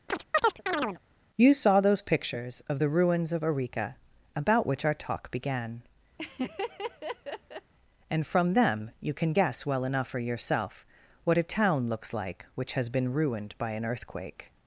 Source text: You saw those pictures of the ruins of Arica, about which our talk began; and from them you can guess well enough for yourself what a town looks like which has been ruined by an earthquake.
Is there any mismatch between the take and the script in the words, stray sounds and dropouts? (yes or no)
yes